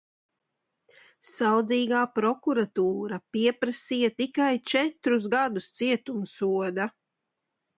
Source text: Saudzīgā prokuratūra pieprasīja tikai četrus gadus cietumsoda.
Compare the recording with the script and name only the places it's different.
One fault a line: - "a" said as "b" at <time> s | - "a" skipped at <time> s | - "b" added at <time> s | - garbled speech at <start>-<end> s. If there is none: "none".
none